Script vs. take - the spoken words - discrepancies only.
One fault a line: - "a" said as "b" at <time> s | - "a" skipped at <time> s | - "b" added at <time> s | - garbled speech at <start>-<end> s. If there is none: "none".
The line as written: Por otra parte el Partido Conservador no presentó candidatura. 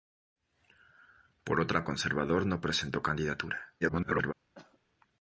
- "parte el Partido" skipped at 1.9 s
- garbled speech at 3.8-4.3 s